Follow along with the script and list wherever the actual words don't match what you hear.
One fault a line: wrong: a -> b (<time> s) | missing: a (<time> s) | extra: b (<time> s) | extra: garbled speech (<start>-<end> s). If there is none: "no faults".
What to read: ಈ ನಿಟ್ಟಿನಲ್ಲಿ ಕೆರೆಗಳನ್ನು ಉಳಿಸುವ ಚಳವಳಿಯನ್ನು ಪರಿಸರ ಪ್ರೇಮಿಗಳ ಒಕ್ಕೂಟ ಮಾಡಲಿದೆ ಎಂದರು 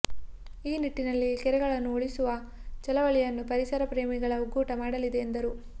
no faults